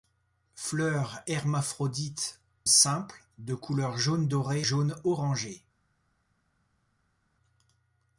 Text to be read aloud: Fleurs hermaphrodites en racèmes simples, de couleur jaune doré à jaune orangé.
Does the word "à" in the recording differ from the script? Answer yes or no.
yes